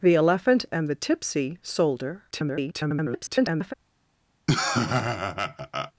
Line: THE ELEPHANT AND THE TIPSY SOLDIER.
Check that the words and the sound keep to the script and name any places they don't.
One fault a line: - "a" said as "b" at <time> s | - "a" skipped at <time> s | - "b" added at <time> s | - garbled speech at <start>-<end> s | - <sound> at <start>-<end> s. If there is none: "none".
- garbled speech at 2.3-3.7 s
- laugh at 4.5-5.9 s